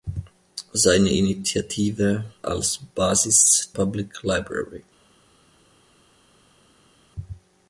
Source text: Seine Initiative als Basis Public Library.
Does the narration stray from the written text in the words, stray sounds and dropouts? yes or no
no